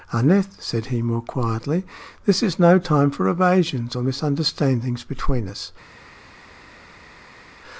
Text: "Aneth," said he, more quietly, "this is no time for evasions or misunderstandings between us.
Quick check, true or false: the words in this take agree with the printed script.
true